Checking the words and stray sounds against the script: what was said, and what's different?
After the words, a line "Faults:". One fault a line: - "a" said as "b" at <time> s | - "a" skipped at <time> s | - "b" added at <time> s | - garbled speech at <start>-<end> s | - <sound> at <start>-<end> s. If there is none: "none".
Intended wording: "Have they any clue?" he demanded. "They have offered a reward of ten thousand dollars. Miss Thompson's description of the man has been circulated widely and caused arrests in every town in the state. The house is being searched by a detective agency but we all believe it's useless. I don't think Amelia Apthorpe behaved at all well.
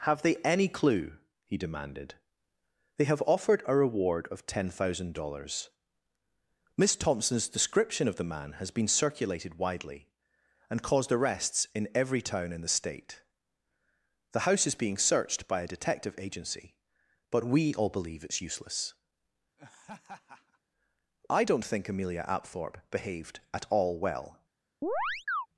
"Have they any clue?" he demanded. "They have offered a reward of ten thousand dollars. Miss Thompson's description of the man has been circulated widely and caused arrests in every town in the state. The house is being searched by a detective agency but we all believe it's useless. I don't think Amelia Apthorpe behaved at all well.
Faults:
- laugh at 19.6-20.6 s
- chirp at 24.8-25.5 s